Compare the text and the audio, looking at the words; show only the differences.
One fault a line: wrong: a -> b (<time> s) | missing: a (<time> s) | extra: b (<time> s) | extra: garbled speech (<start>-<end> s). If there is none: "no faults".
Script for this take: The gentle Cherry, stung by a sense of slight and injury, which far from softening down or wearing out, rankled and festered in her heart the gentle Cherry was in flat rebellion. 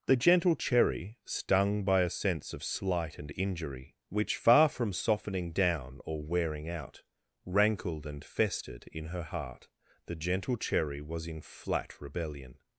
no faults